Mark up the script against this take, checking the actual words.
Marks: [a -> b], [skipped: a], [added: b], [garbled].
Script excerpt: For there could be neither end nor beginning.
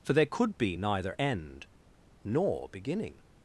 For there could be neither end nor beginning.